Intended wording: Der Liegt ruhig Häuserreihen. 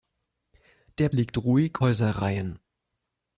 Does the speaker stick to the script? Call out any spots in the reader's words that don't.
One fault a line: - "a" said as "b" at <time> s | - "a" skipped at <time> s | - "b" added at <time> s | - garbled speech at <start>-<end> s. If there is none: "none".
none